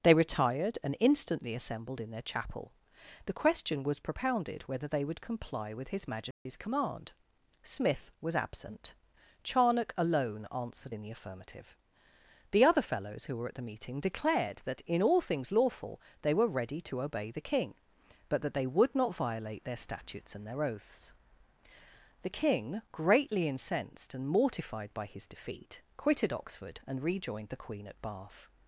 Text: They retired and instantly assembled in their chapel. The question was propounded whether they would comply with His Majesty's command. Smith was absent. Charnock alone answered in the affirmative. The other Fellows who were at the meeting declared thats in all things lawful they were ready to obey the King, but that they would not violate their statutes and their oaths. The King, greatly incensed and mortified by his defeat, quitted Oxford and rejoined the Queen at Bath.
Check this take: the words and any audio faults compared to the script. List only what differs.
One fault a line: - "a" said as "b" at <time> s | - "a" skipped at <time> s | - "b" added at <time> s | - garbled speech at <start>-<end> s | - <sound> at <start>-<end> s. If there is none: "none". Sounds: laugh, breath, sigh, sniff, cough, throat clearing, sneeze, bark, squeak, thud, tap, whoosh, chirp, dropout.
- dropout at 6.3-6.5 s
- "thats" said as "that" at 14.6 s